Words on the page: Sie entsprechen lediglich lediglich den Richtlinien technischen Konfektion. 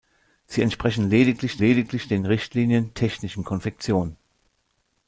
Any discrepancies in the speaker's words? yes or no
no